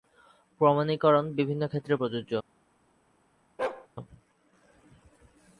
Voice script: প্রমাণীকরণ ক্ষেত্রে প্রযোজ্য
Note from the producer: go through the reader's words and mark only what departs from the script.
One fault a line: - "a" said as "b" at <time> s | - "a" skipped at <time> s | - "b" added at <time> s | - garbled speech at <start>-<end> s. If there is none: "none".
- "বিভিন্ন" added at 1.3 s